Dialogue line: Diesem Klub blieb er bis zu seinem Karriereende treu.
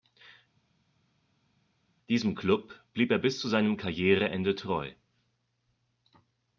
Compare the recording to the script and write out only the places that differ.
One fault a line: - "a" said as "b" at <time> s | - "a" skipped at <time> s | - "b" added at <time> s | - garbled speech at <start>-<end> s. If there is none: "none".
none